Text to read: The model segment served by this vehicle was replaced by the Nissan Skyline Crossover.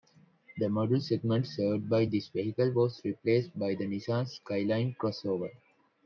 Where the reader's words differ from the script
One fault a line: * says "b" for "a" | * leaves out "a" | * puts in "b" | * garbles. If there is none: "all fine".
all fine